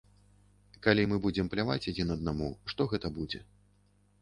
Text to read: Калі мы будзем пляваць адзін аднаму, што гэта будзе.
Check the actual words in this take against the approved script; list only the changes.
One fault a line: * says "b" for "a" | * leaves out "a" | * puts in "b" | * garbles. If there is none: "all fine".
all fine